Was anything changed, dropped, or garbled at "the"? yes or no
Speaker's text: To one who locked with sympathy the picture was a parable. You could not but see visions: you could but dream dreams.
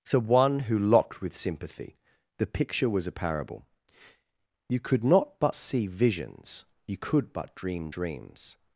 no